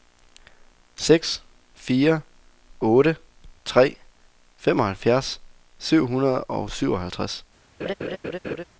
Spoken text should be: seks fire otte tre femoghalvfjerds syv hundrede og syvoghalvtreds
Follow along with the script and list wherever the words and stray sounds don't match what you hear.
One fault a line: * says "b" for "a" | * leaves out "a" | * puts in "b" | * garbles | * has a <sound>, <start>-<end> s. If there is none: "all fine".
* has a laugh, 7.8-8.6 s